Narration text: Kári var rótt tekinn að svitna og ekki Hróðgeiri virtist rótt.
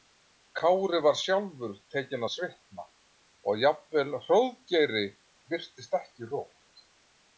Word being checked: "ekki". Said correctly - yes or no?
no